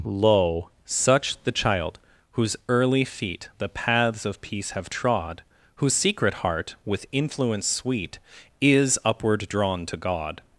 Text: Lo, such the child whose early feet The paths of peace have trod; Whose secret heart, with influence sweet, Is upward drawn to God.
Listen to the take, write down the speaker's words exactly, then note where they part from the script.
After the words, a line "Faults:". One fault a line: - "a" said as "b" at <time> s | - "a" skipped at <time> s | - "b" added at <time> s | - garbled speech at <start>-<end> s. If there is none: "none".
Lo, such the child whose early feet The paths of peace have trod; Whose secret heart, with influence sweet, Is upward drawn to God.
Faults:
none